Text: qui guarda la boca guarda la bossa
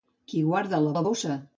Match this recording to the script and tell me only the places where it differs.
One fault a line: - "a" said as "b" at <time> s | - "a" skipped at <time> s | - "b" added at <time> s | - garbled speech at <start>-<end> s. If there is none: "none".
- "boca guarda" skipped at 0.9 s